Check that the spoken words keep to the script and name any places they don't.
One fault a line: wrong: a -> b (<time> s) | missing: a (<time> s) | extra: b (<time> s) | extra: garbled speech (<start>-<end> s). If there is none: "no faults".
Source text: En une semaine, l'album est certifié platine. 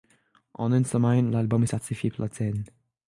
no faults